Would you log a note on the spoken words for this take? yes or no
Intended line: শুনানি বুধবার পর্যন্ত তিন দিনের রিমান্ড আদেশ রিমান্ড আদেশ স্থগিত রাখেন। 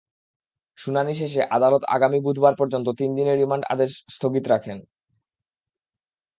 yes